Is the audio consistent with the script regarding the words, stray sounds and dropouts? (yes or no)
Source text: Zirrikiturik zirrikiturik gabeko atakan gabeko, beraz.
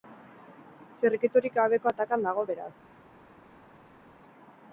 no